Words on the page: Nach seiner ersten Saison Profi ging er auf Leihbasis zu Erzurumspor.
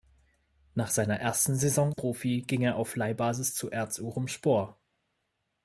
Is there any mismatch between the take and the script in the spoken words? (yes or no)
no